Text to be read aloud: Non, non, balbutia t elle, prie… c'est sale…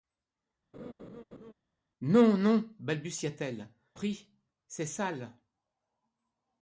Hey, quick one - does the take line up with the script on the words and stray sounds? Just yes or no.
no